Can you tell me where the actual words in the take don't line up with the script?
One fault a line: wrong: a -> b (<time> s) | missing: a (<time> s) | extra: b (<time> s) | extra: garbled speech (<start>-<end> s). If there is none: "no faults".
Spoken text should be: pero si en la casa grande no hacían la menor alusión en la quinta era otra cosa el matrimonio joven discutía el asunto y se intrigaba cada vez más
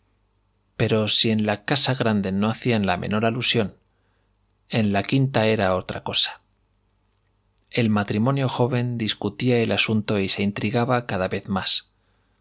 no faults